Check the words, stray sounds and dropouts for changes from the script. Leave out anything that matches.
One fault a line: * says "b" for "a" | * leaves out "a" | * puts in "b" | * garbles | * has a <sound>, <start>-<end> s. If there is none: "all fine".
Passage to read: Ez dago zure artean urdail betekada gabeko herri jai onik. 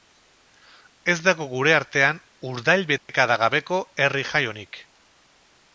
* says "gure" for "zure"
* has a dropout, 3.0-3.1 s